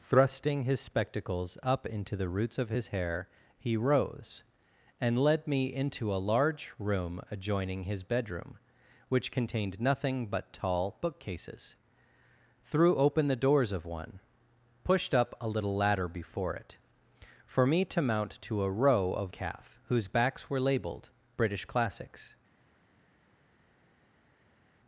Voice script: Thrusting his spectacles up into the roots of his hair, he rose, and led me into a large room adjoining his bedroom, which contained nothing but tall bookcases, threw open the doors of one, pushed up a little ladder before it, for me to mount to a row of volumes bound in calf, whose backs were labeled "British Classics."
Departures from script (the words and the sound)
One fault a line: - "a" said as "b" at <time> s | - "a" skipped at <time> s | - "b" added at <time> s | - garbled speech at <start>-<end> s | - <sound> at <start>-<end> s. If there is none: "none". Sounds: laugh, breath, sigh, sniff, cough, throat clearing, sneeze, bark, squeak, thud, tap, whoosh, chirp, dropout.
- "volumes bound in" skipped at 19.3 s